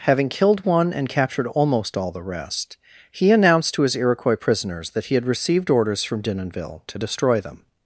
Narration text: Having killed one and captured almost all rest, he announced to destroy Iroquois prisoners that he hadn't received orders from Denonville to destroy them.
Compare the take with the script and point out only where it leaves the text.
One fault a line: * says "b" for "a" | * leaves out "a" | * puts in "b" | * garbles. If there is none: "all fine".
* puts in "the"
* says "his" for "destroy"
* says "had" for "hadn't"